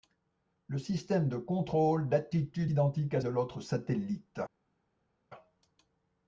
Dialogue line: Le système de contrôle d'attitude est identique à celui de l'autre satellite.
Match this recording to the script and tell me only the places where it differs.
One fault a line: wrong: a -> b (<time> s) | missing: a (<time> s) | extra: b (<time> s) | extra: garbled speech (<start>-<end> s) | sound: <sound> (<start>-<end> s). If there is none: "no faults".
missing: est (2.7 s)
missing: celui (3.2 s)